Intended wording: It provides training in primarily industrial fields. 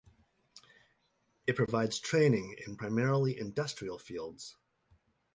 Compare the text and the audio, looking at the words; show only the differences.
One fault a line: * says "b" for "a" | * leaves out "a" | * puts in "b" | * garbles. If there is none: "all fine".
all fine